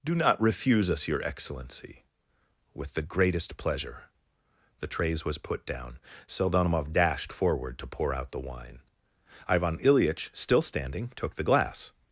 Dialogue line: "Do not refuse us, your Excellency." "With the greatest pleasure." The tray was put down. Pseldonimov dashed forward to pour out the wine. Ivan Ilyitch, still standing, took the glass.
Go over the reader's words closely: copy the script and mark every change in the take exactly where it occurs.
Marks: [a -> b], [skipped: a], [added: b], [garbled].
"Do not refuse us, your Excellency." "With the greatest pleasure." The [tray -> trays] was put down. Pseldonimov dashed forward to pour out the wine. Ivan Ilyitch, still standing, took the glass.